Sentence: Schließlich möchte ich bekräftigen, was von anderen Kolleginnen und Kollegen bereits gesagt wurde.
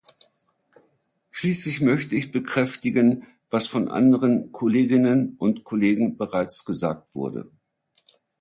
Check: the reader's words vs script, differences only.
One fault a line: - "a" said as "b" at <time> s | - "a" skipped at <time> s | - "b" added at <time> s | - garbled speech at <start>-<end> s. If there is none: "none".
none